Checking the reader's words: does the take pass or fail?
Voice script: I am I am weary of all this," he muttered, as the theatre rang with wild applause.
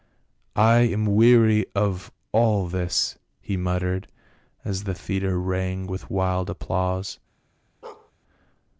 fail